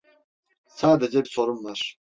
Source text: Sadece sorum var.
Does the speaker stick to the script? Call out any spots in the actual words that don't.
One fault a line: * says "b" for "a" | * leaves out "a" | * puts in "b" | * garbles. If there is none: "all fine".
all fine